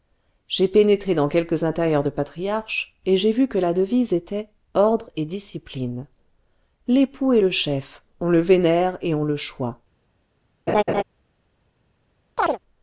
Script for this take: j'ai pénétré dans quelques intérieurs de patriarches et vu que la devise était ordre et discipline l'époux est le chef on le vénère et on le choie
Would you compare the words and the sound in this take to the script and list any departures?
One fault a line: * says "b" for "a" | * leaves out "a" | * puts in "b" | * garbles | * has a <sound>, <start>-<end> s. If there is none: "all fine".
* puts in "j'ai"
* has a laugh, 10.7-11.0 s
* has a chirp, 12.4-12.6 s